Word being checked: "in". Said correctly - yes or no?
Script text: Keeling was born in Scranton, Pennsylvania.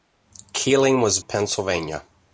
no